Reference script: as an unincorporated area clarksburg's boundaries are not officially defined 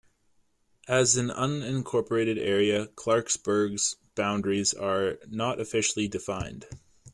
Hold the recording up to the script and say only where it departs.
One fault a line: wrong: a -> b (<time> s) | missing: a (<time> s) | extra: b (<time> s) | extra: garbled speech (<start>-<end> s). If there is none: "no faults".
no faults